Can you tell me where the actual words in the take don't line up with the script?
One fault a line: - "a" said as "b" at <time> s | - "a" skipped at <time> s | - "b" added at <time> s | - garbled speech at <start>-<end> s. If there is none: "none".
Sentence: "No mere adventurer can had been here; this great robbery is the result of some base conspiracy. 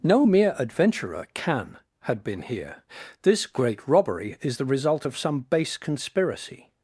none